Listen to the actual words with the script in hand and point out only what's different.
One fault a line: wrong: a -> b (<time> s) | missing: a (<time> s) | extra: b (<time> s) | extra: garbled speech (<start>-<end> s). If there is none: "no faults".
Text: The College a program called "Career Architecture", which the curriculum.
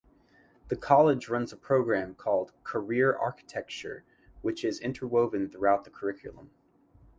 extra: runs (1.3 s)
extra: is interwoven throughout (4.6 s)